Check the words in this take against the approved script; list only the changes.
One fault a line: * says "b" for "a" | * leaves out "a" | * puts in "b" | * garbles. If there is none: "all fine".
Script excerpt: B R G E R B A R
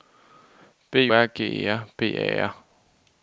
all fine